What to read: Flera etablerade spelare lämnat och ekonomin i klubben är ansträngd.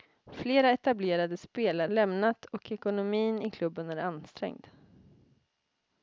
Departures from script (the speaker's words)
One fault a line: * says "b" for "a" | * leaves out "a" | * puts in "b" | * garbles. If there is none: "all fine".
all fine